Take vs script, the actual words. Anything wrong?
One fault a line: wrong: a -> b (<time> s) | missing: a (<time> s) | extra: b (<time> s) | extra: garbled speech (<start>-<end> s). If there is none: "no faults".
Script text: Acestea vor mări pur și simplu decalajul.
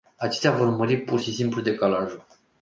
no faults